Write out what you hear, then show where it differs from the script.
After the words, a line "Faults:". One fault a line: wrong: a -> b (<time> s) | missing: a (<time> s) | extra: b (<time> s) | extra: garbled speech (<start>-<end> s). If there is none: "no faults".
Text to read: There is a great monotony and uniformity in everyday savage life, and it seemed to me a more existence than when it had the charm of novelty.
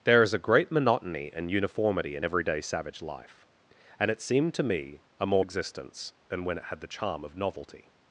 There is a great monotony and uniformity in everyday savage life, and it seemed to me a more existence than when it had the charm of novelty.
Faults:
no faults